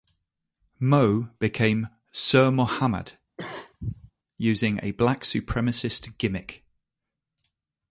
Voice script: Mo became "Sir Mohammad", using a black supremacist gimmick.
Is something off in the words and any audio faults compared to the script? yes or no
yes